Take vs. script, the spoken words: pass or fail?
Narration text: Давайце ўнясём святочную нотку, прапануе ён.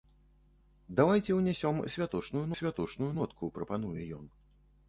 fail